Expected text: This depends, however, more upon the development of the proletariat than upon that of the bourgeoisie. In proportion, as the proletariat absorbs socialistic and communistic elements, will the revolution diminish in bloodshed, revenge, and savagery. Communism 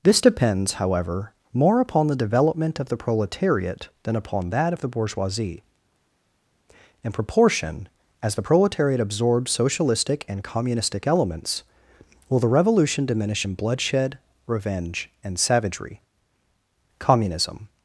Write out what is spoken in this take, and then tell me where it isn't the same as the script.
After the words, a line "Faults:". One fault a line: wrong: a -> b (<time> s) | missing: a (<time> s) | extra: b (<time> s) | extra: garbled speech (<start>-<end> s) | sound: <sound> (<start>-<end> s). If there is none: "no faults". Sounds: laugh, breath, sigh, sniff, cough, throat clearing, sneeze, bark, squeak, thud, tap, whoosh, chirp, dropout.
This depends, however, more upon the development of the proletariat than upon that of the bourgeoisie. In proportion, as the proletariat absorbs socialistic and communistic elements, will the revolution diminish in bloodshed, revenge, and savagery. Communism
Faults:
no faults